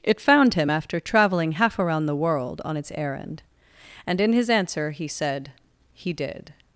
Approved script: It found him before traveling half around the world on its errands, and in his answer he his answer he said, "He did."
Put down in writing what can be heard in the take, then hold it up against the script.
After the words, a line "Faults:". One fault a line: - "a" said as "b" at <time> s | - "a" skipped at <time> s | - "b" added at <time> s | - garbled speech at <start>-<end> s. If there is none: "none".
It found him after traveling half around the world on its errand, and in his answer he said, "He did."
Faults:
- "before" said as "after" at 0.7 s
- "errands" said as "errand" at 2.9 s
- "his answer he" skipped at 5.1 s